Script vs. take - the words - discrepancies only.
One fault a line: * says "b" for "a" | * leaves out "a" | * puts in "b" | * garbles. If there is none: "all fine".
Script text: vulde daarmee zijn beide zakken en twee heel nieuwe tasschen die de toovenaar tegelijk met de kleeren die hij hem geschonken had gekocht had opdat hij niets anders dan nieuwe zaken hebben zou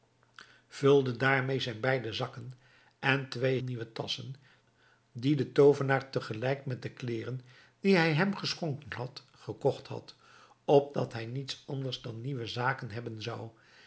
* leaves out "heel"